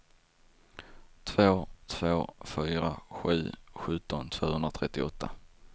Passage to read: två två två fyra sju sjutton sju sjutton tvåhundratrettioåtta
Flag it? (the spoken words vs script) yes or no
yes